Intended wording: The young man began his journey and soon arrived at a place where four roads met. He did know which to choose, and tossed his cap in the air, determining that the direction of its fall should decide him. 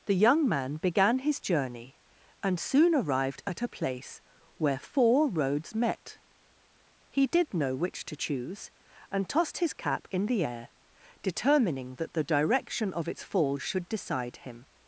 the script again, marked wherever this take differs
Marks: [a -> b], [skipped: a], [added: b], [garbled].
The young man began his journey and soon arrived at a place where four roads met. He did know which to choose, and tossed his cap in the air, determining that the direction of its fall should decide him.